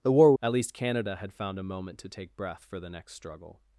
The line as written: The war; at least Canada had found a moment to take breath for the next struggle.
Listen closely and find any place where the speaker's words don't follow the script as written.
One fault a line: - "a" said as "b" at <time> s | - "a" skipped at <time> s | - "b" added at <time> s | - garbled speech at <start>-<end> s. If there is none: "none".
none